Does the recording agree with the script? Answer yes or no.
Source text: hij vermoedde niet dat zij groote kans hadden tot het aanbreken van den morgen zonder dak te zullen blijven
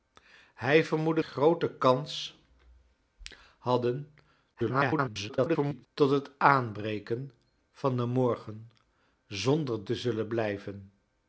no